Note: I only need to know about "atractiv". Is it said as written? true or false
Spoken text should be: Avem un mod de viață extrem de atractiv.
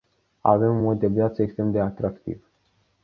true